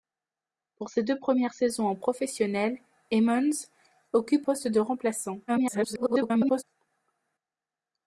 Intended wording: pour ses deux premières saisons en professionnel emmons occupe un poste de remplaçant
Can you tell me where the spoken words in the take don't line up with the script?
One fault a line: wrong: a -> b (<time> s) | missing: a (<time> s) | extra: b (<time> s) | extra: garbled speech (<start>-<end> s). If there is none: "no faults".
missing: un (4.5 s)
extra: garbled speech (5.5-6.6 s)